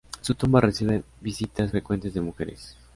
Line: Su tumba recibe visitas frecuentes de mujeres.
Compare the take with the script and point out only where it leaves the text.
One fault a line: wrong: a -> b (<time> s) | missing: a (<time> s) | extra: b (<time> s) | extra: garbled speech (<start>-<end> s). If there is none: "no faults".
no faults